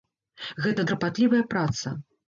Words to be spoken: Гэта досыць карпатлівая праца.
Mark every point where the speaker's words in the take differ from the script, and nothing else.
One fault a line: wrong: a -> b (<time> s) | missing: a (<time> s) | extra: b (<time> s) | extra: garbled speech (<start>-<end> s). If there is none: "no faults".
missing: досыць (0.8 s)